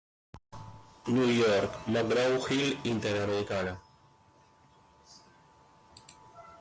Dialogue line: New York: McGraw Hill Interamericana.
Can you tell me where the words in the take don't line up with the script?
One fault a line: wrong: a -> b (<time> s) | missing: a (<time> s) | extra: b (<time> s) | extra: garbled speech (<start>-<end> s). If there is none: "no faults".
no faults